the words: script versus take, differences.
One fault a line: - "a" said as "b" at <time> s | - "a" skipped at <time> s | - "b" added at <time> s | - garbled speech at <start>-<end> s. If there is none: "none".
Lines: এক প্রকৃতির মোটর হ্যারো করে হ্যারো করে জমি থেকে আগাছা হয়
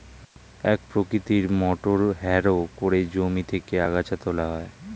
- "হ্যারো করে" skipped at 3.0 s
- "তোলা" added at 4.2 s